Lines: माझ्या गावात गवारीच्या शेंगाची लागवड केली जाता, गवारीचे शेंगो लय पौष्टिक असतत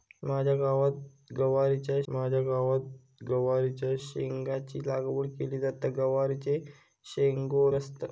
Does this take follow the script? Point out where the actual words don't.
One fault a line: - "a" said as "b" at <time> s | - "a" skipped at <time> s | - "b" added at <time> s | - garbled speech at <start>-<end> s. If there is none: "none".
- "माझ्या गावात गवारीच्या" added at 2.1 s
- "लय पौष्टिक" skipped at 7.7 s